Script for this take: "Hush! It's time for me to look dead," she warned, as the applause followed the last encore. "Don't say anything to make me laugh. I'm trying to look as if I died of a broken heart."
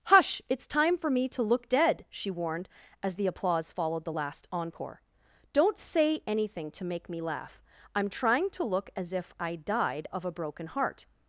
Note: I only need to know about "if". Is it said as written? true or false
true